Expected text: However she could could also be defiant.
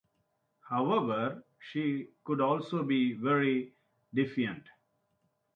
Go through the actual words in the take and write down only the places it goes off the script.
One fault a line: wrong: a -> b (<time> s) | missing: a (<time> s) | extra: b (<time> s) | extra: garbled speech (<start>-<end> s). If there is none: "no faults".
missing: could (2.4 s)
extra: very (3.1 s)